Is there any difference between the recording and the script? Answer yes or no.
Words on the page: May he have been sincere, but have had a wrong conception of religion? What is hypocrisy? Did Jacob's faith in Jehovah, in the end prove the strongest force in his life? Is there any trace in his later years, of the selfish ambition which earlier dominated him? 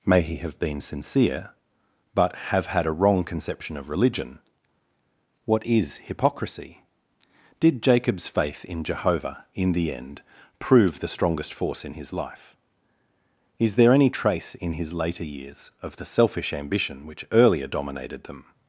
yes